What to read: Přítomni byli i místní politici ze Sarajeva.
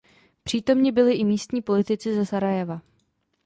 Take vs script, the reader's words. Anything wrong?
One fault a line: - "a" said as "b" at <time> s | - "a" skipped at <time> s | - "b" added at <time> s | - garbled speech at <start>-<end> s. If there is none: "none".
none